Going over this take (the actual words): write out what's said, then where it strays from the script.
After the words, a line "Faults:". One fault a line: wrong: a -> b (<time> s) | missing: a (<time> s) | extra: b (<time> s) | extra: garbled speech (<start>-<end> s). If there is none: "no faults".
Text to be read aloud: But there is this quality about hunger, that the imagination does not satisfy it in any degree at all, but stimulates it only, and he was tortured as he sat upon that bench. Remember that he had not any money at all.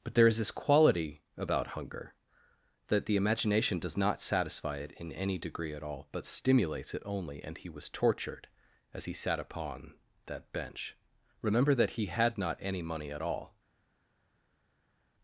But there is this quality about hunger, that the imagination does not satisfy it in any degree at all, but stimulates it only, and he was tortured as he sat upon that bench. Remember that he had not any money at all.
Faults:
no faults